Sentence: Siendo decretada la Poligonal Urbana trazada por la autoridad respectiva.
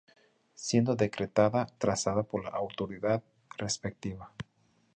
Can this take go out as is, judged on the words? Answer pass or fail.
fail